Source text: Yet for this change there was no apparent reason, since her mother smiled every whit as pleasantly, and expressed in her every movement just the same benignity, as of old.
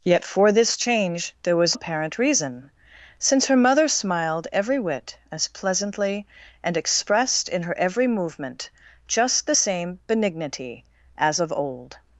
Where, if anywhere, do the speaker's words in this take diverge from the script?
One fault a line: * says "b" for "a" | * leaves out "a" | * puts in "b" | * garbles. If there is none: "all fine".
* leaves out "no"